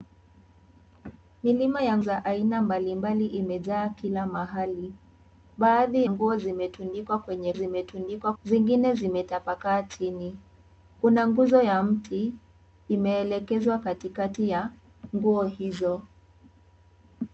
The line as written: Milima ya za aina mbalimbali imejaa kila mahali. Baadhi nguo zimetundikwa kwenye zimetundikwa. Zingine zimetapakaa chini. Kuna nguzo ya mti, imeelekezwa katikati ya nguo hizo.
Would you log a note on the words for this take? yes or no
no